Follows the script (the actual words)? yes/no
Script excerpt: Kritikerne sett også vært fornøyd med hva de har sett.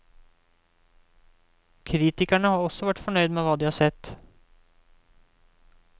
no